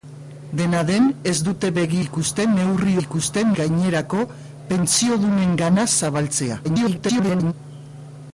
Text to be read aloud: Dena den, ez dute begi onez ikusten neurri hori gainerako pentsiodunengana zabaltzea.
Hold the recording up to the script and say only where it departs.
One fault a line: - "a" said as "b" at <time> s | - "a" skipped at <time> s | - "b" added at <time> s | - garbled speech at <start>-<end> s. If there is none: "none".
- "onez" skipped at 2.0 s
- "hori" said as "ikusten" at 3.0 s
- garbled speech at 6.6-7.5 s